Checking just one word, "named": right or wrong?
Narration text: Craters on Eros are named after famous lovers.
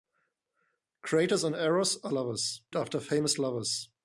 wrong